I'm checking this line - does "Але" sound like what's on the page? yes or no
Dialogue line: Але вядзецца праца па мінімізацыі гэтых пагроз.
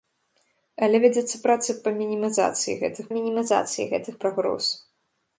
yes